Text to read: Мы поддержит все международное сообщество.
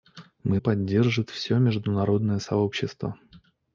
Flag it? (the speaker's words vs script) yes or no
no